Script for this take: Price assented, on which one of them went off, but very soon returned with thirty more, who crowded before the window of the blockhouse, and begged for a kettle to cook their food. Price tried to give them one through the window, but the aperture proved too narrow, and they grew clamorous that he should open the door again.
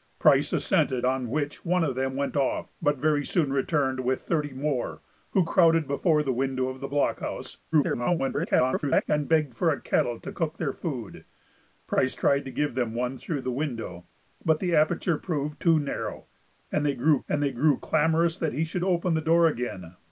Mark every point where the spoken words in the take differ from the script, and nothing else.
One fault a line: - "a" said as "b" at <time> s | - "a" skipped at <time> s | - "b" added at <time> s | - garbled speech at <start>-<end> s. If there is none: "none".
- garbled speech at 7.7-9.0 s
- "and they grew" added at 17.3 s